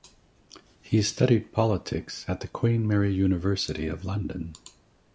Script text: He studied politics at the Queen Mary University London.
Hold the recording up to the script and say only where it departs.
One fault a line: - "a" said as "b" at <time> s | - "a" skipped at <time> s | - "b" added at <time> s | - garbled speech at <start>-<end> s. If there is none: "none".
- "of" added at 3.9 s